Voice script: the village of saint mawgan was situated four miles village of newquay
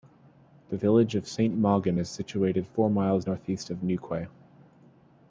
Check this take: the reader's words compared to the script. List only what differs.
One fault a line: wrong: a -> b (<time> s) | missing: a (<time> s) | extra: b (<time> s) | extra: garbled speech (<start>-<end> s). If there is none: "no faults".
wrong: was -> is (2.0 s)
wrong: village -> northeast (3.2 s)